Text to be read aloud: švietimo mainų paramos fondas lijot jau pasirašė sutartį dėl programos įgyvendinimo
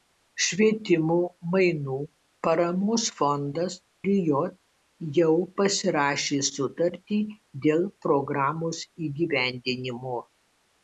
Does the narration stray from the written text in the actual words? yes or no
no